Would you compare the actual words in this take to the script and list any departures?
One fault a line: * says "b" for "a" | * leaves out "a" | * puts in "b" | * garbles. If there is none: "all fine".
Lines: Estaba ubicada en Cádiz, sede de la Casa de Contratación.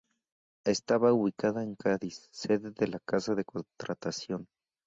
all fine